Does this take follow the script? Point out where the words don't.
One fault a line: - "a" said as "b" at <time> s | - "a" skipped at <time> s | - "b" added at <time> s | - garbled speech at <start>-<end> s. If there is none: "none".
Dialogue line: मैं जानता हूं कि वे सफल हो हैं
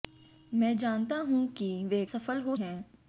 none